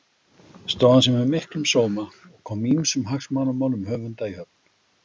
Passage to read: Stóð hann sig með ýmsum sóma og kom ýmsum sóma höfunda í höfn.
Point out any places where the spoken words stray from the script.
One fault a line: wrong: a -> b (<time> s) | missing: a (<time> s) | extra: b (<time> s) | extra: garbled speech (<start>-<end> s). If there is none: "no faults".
wrong: ýmsum -> miklum (1.3 s)
wrong: sóma -> hagsmunamálum (3.1 s)